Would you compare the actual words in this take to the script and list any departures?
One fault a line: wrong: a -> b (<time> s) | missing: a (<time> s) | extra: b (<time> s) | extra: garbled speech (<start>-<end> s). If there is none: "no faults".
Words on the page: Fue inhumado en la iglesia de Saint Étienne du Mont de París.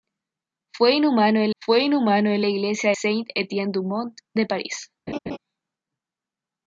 extra: fue inhumado en (1.6 s)
missing: de (2.9 s)